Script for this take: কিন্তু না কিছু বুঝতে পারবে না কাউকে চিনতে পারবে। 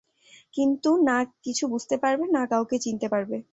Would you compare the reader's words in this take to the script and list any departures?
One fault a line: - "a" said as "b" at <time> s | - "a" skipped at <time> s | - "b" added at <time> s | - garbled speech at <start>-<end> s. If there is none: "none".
none